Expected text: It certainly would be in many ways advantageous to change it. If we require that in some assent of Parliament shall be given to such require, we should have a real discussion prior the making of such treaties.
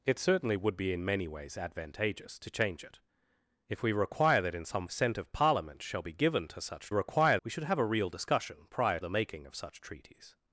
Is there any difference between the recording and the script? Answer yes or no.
no